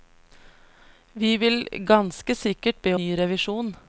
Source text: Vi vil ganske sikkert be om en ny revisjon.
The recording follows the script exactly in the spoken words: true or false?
false